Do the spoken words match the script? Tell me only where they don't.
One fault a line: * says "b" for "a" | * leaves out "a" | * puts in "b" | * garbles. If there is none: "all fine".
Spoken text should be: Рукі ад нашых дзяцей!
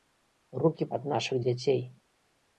all fine